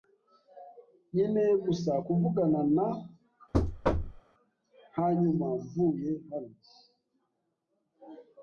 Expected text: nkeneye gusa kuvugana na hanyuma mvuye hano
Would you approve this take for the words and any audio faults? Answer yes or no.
no